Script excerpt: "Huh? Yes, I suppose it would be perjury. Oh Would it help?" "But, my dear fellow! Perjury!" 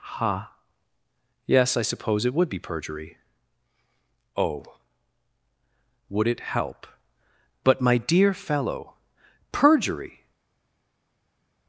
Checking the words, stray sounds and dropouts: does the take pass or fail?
pass